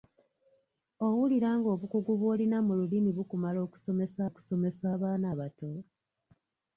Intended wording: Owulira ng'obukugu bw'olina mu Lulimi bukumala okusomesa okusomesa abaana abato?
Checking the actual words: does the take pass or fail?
pass